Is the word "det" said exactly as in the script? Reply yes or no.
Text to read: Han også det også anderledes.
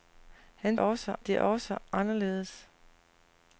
yes